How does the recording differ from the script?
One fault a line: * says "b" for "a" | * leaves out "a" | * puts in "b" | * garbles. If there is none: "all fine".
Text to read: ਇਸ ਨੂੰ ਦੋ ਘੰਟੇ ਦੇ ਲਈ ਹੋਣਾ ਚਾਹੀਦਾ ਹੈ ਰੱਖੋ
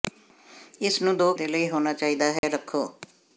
* leaves out "ਘੰਟੇ"